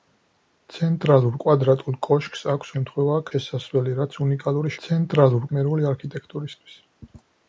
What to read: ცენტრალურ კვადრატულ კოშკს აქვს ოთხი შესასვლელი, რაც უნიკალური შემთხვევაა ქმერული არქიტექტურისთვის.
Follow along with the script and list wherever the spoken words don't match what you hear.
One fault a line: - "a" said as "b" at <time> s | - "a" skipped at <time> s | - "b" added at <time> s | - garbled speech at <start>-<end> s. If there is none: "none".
- "ოთხი" said as "შემთხვევაა" at 2.8 s
- "შემთხვევაა" said as "ცენტრალურ" at 4.9 s